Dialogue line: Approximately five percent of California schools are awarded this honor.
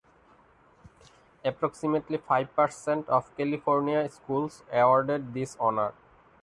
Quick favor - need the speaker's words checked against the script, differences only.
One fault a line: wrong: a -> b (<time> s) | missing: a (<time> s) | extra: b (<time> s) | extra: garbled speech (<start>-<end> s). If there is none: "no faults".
missing: are (4.6 s)